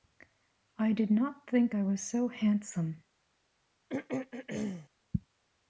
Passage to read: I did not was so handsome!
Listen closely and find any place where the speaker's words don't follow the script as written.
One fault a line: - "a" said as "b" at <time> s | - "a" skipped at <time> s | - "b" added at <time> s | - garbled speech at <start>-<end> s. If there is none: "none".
- "think I" added at 1.5 s